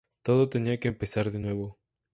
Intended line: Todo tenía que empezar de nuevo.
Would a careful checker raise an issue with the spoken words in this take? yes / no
no